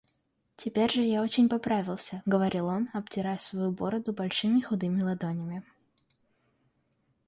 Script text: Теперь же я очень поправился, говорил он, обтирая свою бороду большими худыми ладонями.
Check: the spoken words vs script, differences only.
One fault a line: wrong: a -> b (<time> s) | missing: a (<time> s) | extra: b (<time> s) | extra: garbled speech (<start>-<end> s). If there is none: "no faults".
no faults